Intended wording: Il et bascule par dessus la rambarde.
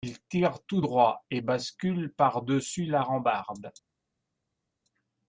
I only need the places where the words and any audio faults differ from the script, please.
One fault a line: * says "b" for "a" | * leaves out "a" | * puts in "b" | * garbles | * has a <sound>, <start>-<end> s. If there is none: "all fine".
* puts in "tire tout droit"